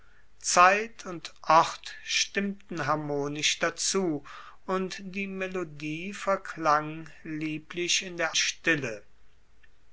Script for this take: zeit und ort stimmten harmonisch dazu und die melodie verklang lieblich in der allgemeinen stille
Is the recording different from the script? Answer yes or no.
yes